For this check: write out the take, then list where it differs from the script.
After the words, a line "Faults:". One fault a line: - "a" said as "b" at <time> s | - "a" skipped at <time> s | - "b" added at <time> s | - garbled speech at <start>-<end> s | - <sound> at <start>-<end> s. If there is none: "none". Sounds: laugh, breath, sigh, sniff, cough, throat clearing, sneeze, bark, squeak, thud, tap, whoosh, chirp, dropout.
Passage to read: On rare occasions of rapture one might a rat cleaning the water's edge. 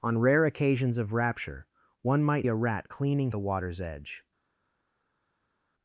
On rare occasions of rapture one might a rat cleaning the water's edge.
Faults:
none